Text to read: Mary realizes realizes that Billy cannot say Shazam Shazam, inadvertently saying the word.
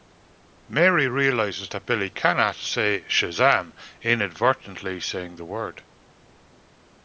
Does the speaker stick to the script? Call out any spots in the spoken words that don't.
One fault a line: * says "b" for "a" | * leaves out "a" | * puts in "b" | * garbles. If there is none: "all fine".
* leaves out "realizes"
* leaves out "Shazam"